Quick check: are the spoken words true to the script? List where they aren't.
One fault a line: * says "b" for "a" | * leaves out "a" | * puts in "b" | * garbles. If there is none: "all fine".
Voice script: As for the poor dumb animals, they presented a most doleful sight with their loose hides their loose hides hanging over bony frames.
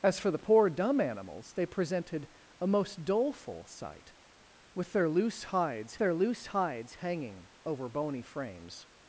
all fine